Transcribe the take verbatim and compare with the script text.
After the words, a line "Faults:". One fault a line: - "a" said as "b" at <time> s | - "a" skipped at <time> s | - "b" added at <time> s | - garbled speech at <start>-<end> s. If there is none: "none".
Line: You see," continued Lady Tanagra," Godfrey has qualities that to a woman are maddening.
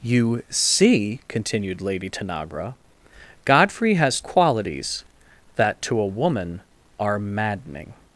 You see," continued Lady Tanagra," Godfrey has qualities that to a woman are maddening.
Faults:
none